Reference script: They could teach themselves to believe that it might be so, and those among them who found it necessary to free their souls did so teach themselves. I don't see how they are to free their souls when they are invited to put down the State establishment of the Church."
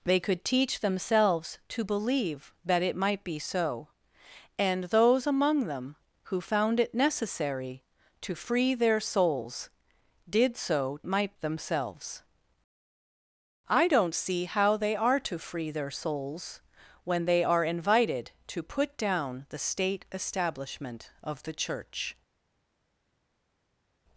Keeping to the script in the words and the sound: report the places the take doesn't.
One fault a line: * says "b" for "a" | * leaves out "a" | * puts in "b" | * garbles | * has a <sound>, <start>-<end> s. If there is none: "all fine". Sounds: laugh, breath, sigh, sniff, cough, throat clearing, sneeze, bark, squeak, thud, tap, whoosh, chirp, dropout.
* says "might" for "teach"